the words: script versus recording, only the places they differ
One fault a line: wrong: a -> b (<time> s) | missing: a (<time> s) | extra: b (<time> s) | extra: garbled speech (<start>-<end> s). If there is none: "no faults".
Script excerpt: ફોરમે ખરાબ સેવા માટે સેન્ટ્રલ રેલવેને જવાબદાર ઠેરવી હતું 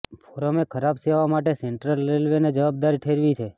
wrong: હતું -> છે (3.3 s)